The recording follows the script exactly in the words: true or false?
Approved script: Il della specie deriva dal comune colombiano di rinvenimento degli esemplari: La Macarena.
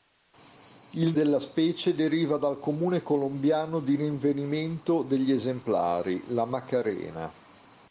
true